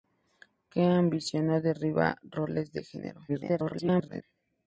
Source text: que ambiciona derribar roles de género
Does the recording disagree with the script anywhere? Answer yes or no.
yes